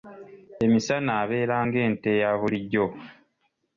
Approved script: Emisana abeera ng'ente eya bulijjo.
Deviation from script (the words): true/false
false